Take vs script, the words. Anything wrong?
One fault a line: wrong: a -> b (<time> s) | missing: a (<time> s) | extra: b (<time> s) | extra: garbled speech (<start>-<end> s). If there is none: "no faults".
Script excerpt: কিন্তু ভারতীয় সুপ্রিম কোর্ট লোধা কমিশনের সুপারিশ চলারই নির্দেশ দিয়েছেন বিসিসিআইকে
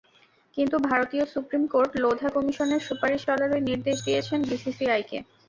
no faults